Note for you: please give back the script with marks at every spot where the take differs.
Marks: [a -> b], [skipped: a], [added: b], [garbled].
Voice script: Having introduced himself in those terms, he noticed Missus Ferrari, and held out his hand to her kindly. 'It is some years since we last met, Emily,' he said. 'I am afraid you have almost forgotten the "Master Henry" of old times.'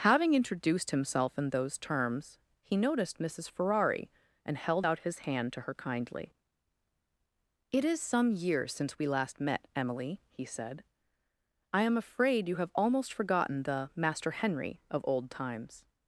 Having introduced himself in those terms, he noticed Missus Ferrari, and held out his hand to her kindly. 'It is some years since we last met, Emily,' he said. 'I am afraid you have almost forgotten the "Master Henry" of old times.'